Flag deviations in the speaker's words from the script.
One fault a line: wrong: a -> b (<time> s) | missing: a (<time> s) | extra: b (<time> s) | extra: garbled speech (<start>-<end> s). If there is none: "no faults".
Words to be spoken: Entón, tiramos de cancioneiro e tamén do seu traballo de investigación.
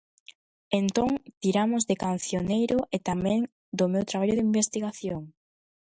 wrong: seu -> meu (3.9 s)